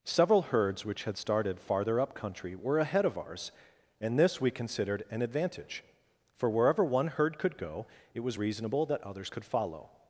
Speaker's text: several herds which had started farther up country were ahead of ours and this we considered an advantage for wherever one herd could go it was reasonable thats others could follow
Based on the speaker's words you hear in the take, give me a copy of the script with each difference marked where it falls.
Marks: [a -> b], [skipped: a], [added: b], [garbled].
several herds which had started farther up country were ahead of ours and this we considered an advantage for wherever one herd could go it was reasonable [thats -> that] others could follow